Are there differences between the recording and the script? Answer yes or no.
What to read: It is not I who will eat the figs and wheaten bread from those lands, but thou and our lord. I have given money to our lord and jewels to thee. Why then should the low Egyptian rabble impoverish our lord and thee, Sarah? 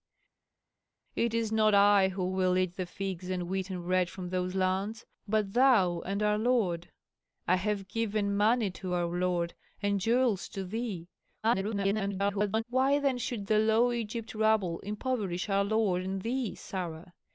yes